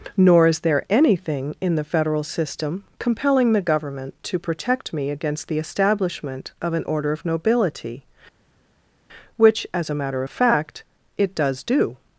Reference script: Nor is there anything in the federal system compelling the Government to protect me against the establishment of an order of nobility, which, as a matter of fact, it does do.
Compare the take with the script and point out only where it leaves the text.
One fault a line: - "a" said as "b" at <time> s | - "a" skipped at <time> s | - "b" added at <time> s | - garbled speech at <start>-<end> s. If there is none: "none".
none